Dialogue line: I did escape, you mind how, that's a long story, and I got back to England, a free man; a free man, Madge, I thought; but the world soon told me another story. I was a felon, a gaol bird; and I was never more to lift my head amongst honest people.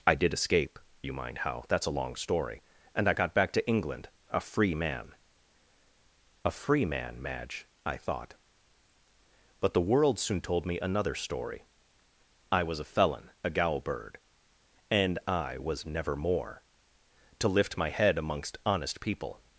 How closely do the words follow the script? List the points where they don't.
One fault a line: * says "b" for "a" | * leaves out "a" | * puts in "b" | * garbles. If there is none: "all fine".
all fine